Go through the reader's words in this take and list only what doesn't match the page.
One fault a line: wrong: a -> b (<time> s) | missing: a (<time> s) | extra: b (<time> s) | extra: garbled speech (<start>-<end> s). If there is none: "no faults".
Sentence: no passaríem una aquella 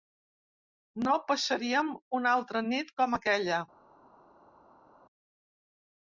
extra: altra nit com (2.4 s)